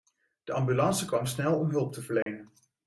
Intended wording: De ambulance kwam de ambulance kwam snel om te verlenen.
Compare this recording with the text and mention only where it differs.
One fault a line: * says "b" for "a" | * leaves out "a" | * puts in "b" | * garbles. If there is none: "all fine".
* leaves out "de ambulance kwam"
* puts in "hulp"